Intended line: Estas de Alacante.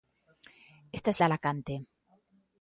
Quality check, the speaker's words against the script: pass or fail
pass